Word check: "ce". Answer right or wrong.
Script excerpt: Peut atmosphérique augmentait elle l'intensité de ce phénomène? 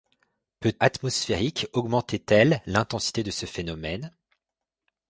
right